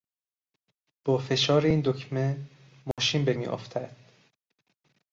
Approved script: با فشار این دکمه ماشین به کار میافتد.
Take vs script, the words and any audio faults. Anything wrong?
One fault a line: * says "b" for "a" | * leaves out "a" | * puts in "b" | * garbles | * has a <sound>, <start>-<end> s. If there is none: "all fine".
* has a dropout, 2.9-3.0 s
* leaves out "کار"